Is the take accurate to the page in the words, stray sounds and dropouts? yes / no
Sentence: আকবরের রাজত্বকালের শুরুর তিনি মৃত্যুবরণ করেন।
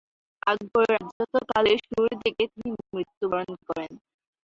no